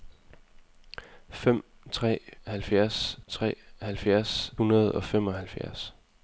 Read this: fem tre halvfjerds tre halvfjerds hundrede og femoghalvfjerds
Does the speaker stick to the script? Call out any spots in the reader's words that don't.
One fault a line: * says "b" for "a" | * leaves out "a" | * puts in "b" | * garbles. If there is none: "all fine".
all fine